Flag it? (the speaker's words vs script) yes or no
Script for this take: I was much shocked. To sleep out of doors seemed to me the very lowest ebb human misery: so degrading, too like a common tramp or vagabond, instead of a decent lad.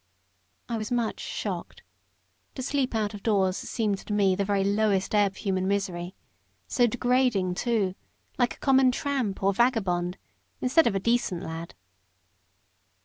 no